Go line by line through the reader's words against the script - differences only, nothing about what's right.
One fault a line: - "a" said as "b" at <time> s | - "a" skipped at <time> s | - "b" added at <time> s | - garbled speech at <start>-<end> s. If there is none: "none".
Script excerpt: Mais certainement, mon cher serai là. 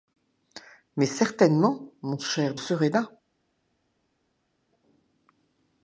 none